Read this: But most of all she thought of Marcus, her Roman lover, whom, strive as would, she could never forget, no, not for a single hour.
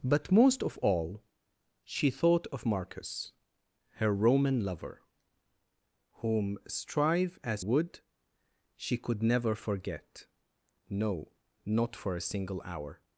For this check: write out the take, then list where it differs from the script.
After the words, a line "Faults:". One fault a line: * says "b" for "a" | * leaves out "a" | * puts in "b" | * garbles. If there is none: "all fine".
But most of all she thought of Marcus, her Roman lover, whom, strive as would, she could never forget, no, not for a single hour.
Faults:
all fine